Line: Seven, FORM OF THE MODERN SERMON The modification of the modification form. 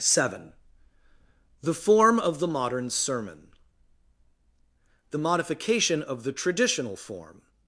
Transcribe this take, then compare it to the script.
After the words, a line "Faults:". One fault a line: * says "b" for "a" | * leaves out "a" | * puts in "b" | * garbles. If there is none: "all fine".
Seven, THE FORM OF THE MODERN SERMON The modification of the traditional form.
Faults:
* puts in "THE"
* says "traditional" for "modification"